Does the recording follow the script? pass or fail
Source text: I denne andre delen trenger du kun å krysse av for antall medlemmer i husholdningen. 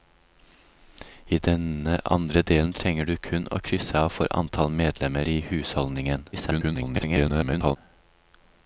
fail